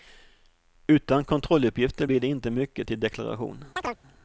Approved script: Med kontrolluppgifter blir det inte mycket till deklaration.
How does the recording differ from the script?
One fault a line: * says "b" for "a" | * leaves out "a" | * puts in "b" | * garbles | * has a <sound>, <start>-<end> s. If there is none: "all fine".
* says "Utan" for "Med"
* has a chirp, 3.8-4.0 s